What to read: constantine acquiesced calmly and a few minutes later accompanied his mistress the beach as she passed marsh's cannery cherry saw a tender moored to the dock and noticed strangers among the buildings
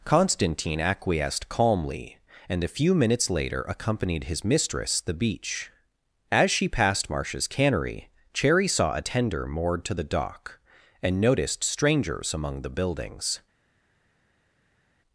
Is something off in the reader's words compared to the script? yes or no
no